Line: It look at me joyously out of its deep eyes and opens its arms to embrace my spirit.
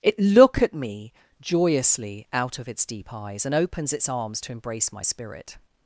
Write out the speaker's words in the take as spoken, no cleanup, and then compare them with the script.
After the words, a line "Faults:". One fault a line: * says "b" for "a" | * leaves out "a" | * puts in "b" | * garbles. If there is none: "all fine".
It look at me joyously out of its deep eyes and opens its arms to embrace my spirit.
Faults:
all fine